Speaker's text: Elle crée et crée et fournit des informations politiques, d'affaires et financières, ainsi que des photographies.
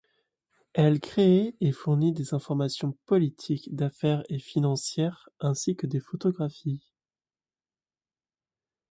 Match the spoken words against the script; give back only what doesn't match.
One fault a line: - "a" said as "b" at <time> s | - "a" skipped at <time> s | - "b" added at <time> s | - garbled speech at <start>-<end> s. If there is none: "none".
- "crée et" skipped at 1.7 s